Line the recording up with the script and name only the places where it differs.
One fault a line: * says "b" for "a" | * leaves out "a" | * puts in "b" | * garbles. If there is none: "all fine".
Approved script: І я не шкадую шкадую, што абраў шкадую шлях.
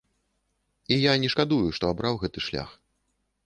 * leaves out "шкадую"
* says "гэты" for "шкадую"